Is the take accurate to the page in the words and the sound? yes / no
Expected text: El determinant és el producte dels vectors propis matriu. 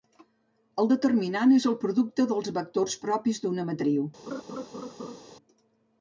no